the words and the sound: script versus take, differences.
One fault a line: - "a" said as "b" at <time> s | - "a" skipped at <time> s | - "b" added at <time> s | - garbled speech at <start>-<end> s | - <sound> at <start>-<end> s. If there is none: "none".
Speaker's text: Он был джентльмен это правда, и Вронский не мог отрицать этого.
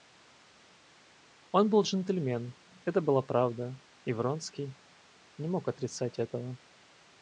- "была" added at 3.0 s